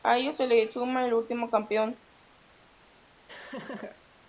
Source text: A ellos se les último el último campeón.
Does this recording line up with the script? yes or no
no